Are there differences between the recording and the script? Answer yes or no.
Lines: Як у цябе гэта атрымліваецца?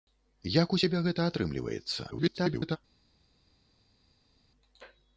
yes